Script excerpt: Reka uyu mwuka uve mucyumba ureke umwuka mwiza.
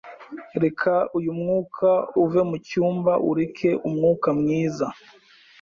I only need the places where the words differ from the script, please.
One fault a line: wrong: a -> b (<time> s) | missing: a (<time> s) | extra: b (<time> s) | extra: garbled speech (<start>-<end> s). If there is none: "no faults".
no faults